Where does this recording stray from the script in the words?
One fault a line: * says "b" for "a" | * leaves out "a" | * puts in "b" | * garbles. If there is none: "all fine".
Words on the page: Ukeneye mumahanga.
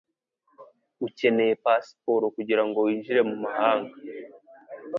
* puts in "pasiporo kugirango winjire"